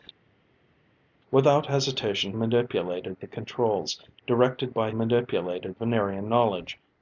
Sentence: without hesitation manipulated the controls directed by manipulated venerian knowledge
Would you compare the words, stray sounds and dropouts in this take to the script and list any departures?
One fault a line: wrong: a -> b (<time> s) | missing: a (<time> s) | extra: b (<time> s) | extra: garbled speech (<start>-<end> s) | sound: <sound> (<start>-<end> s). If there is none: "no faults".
no faults